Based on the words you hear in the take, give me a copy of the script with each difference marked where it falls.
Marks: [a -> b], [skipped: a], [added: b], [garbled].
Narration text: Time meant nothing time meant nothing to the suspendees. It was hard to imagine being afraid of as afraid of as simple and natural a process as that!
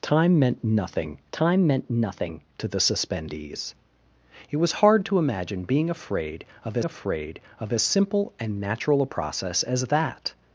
Time meant nothing time meant nothing to the suspendees. It was hard to imagine being afraid of as afraid of as simple and natural a process as that!